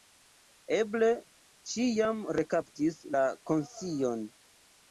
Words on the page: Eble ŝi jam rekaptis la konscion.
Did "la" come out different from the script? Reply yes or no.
no